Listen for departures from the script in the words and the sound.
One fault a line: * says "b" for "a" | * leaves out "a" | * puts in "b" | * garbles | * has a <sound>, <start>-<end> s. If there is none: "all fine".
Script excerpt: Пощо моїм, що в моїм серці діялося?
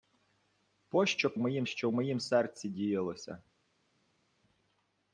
all fine